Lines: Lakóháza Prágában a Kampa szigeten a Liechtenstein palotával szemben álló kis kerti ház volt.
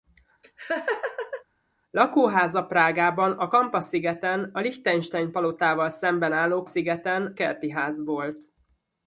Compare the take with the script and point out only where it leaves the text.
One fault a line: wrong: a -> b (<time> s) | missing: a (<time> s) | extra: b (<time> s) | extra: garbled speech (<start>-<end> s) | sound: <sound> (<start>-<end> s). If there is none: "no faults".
sound: laugh (0.4-1.4 s)
wrong: kis -> szigeten (6.6 s)